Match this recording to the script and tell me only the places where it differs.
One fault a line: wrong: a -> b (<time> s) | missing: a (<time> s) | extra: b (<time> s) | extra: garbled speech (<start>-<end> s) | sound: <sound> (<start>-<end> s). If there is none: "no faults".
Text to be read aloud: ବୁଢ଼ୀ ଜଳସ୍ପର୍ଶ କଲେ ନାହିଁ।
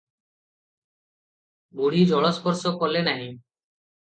no faults